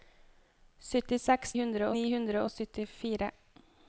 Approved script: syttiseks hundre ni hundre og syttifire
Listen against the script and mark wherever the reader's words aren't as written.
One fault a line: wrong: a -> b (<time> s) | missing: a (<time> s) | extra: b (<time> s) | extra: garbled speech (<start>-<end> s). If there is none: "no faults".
no faults